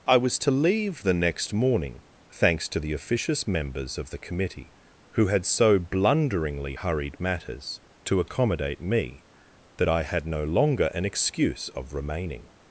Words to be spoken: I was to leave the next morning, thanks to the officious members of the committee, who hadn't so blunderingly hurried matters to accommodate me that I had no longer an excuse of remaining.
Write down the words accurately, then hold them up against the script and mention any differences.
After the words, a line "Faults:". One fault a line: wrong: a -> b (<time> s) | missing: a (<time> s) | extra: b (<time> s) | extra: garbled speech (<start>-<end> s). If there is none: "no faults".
I was to leave the next morning, thanks to the officious members of the committee, who had so blunderingly hurried matters to accommodate me that I had no longer an excuse of remaining.
Faults:
wrong: hadn't -> had (5.3 s)